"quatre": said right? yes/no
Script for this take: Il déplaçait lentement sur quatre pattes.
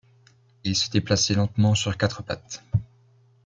yes